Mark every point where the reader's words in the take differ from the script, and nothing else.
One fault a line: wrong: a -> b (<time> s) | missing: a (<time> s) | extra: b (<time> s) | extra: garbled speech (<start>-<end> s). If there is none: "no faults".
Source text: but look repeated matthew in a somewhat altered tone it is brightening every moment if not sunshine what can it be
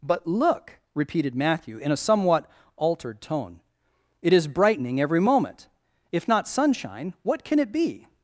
no faults